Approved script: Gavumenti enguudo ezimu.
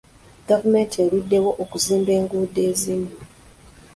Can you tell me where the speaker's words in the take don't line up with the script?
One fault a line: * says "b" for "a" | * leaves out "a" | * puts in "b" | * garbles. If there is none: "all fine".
* puts in "eruddewo okuzimba"